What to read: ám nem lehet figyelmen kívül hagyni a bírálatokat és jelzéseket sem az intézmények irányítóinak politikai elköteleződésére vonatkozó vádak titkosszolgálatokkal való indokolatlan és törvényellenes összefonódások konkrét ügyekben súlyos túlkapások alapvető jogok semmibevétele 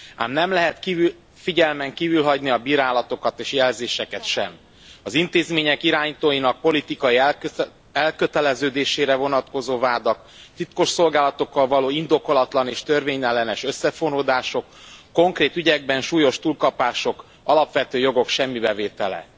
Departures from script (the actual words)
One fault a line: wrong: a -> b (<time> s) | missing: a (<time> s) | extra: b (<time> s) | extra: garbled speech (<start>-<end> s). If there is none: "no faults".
no faults